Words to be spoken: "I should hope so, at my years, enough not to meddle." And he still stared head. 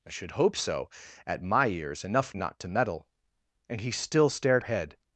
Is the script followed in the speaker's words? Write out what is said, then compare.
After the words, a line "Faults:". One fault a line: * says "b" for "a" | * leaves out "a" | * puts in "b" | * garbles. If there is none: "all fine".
"I should hope so, at my years, enough not to meddle." And he still stared head.
Faults:
all fine